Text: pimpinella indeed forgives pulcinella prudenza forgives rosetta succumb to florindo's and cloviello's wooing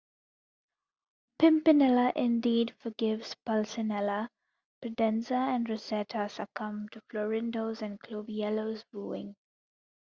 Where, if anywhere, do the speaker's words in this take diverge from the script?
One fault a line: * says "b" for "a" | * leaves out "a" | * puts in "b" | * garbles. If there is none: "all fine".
* says "and" for "forgives"